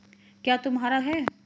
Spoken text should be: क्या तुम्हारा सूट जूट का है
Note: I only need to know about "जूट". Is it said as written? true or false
false